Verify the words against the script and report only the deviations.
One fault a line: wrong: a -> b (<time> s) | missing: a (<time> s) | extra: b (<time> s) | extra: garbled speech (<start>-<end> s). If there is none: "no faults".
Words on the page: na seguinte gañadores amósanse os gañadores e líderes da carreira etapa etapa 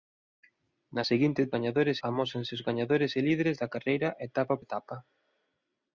no faults